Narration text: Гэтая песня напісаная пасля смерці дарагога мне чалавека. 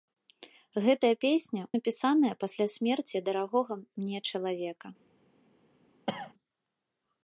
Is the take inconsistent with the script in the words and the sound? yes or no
yes